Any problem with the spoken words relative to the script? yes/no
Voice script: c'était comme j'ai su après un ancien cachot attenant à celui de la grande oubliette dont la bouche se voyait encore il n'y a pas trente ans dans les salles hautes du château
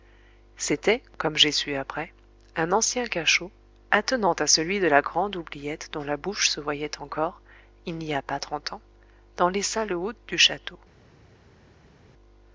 no